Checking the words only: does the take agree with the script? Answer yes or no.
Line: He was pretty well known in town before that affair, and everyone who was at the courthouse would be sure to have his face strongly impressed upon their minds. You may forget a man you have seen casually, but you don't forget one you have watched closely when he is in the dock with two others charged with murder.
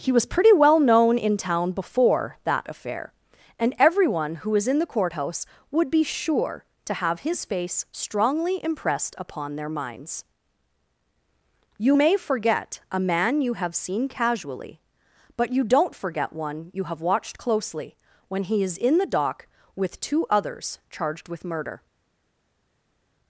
no